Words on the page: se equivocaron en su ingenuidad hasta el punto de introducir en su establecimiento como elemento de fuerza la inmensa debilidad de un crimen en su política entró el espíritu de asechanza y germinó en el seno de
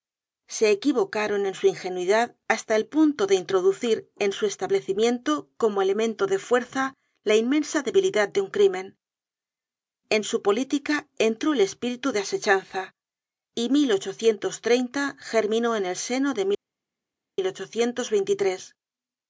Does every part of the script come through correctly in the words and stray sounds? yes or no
yes